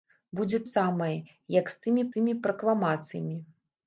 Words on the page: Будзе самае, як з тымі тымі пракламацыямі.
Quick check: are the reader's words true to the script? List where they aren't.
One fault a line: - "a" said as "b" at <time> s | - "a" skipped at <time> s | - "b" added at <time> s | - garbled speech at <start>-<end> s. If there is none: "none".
none